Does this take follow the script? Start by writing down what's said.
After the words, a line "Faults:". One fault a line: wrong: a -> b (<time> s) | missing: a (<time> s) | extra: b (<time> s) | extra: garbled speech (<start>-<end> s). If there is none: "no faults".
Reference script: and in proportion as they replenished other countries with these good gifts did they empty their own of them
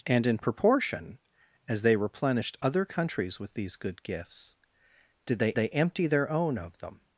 and in proportion as they replenished other countries with these good gifts did they they empty their own of them
Faults:
extra: they (5.5 s)